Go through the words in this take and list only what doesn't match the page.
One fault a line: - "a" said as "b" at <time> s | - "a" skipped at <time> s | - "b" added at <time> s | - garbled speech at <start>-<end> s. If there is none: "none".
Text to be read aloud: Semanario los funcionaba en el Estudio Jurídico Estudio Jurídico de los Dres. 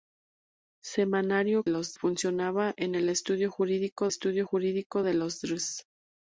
none